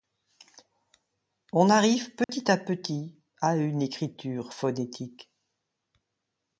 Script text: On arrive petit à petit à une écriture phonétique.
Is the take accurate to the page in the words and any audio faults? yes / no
no